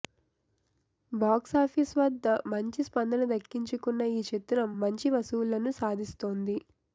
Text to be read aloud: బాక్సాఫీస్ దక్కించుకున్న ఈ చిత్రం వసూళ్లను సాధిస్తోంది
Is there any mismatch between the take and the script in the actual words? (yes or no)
yes